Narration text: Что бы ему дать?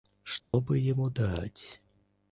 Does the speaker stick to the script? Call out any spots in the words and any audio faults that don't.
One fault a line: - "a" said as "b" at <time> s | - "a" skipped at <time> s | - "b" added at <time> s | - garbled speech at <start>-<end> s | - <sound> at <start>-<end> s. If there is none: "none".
- dropout at 0.4-0.5 s